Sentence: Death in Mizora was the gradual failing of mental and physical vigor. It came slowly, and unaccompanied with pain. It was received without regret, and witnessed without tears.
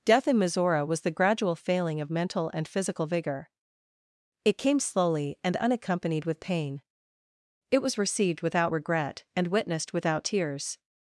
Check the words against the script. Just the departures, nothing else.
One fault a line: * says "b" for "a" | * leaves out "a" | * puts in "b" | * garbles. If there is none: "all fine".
all fine